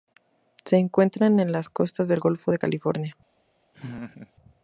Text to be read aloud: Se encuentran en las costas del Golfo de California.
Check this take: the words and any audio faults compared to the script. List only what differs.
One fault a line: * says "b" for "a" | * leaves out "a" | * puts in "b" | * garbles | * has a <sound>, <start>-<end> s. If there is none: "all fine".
* has a laugh, 3.7-4.3 s